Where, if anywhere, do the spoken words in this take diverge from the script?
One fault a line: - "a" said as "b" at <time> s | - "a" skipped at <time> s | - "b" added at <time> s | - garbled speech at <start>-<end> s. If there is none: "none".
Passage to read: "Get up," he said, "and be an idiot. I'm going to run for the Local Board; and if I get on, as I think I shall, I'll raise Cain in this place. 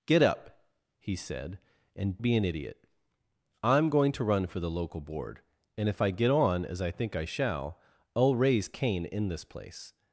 none